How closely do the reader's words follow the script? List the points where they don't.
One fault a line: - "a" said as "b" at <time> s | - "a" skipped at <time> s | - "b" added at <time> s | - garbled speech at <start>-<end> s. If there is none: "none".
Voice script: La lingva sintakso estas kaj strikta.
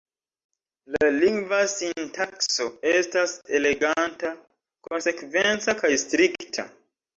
- "eleganta konsekvenca" added at 3.6 s